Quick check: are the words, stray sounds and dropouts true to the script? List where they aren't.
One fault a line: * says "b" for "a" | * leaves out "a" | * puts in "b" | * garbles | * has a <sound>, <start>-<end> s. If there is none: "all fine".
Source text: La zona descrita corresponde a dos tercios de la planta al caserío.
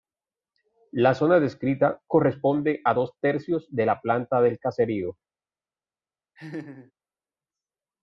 * says "del" for "al"
* has a laugh, 6.4-6.9 s